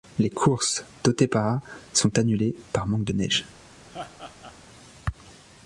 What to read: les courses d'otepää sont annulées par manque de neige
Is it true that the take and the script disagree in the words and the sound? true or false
true